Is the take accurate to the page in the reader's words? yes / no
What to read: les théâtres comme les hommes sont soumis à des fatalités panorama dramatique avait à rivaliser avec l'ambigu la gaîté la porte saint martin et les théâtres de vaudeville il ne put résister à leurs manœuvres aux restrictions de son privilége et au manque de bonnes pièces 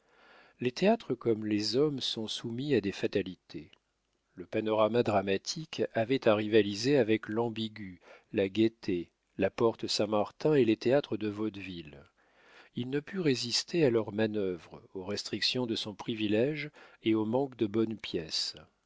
no